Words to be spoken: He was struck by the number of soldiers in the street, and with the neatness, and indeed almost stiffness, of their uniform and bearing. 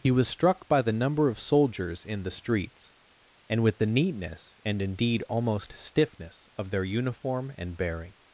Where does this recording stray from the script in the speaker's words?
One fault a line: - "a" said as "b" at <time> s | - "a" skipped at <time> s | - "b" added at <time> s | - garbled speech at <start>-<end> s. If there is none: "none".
- "street" said as "streets" at 2.3 s